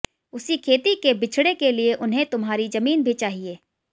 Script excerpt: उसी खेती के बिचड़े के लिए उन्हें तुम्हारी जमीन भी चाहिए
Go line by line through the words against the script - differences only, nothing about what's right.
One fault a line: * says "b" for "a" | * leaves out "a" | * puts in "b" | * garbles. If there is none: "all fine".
all fine